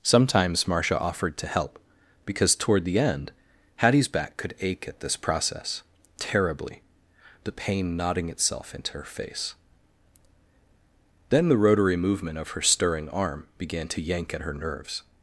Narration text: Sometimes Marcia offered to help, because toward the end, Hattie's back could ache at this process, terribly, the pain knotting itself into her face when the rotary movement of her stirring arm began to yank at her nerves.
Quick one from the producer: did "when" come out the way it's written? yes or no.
no